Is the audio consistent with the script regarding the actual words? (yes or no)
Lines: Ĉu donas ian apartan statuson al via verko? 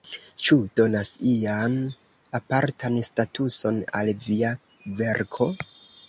yes